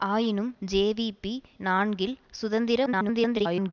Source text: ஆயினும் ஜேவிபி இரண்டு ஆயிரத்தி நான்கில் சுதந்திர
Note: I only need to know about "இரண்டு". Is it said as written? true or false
false